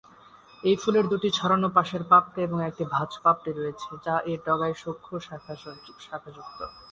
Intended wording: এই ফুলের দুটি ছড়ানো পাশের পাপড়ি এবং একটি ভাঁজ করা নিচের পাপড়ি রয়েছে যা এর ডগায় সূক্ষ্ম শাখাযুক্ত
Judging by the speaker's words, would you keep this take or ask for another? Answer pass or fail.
fail